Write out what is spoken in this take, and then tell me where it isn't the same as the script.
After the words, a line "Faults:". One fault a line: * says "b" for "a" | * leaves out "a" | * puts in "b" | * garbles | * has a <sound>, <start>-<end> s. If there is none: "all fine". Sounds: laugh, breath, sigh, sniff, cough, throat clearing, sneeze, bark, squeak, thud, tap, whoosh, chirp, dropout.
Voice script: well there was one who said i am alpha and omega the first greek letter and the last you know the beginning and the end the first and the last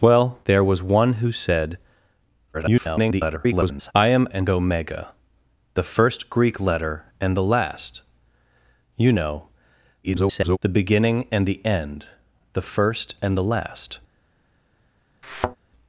well there was one who said [garbled] i am and omega the first greek letter and the last you know [garbled] the beginning and the end the first and the last
Faults:
* garbles
* leaves out "alpha"
* garbles
* has a thud, 15.2-15.6 s